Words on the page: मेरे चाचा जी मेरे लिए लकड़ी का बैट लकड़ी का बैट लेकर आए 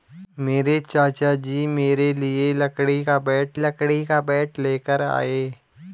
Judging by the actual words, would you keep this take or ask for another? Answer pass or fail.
pass